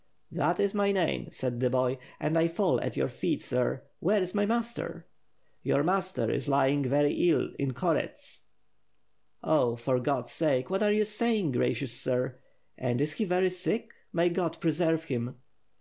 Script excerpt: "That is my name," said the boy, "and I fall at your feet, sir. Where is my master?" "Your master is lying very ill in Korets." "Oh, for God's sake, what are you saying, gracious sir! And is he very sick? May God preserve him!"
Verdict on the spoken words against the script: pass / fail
pass